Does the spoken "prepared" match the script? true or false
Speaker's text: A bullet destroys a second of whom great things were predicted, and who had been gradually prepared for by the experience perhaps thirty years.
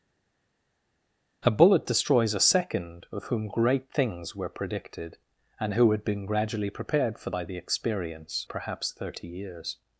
true